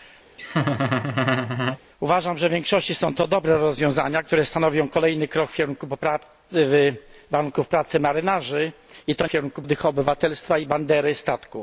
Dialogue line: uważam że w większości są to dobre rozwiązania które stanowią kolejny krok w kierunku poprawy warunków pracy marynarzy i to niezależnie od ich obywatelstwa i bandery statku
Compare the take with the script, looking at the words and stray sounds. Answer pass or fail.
fail